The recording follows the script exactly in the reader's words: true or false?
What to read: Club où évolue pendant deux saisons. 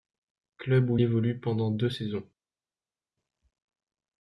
true